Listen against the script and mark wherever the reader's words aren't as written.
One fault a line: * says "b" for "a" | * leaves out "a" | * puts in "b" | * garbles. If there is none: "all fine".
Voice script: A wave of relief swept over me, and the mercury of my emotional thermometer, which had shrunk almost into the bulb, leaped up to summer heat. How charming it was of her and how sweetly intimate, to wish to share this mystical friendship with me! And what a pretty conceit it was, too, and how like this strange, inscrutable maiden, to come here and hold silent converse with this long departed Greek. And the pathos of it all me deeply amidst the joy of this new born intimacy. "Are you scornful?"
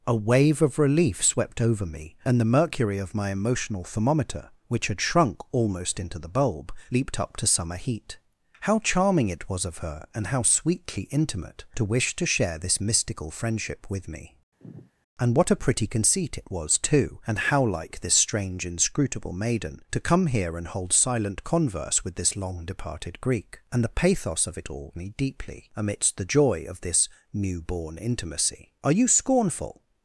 all fine